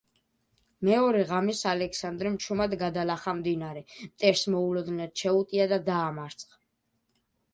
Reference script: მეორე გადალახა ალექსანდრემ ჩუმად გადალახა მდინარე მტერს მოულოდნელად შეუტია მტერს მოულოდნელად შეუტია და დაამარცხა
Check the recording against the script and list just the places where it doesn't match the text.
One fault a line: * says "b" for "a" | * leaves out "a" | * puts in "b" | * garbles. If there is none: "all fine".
* says "ღამეს" for "გადალახა"
* leaves out "მტერს მოულოდნელად შეუტია"